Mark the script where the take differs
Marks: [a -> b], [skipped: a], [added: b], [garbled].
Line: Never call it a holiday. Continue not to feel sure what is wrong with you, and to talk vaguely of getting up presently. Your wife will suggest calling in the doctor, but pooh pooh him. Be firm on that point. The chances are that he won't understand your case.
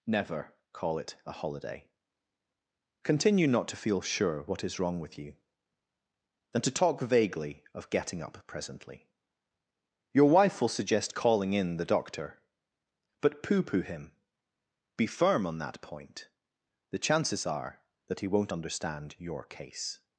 Never call it a holiday. Continue not to feel sure what is wrong with you, [and -> than] to talk vaguely of getting up presently. Your wife will suggest calling in the doctor, but pooh pooh him. Be firm on that point. The chances are that he won't understand your case.